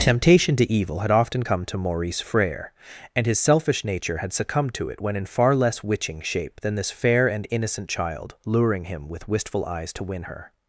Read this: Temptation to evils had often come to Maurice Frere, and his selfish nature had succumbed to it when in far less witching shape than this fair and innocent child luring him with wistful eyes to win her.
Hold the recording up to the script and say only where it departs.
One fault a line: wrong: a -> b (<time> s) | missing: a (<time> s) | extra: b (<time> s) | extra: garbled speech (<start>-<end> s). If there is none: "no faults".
wrong: evils -> evil (0.7 s)